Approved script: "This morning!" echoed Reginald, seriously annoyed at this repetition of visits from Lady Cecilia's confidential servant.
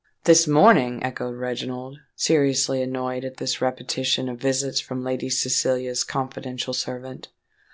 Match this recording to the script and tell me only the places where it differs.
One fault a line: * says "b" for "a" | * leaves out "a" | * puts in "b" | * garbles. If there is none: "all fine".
all fine